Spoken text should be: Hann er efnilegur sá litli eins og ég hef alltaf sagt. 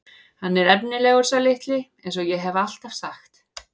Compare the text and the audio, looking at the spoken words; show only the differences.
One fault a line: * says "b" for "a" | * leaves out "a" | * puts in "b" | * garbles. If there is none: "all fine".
all fine